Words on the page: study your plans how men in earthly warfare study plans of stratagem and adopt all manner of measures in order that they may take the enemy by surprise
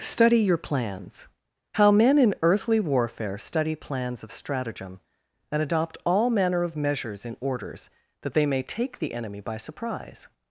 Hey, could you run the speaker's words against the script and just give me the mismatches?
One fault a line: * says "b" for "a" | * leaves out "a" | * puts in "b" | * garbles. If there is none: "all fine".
* says "orders" for "order"